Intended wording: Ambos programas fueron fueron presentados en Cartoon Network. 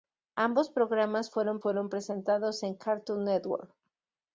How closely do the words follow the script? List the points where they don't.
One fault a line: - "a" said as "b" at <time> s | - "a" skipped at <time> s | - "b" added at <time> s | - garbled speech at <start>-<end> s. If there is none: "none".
none